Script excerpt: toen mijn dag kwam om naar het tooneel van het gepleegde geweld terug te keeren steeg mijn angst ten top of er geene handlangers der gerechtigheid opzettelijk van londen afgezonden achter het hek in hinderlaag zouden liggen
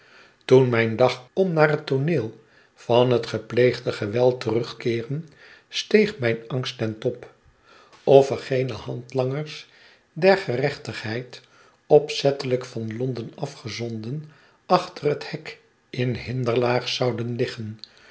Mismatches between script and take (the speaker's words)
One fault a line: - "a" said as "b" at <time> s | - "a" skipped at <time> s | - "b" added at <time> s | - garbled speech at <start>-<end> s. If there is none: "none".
- "kwam" skipped at 1.2 s
- "te" skipped at 4.8 s